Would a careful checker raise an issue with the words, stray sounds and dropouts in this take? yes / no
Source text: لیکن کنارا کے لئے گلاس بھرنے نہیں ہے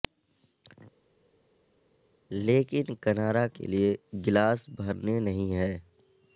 no